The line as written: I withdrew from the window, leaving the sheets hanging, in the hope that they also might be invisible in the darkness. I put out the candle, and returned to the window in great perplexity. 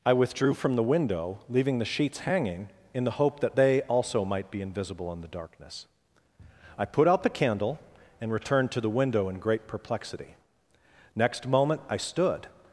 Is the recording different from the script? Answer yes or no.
yes